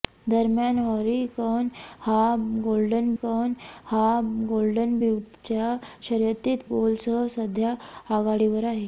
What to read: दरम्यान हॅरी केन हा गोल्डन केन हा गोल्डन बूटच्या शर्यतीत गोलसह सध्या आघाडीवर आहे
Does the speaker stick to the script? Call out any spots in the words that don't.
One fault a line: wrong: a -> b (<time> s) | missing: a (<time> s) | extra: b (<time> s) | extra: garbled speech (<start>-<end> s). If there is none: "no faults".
no faults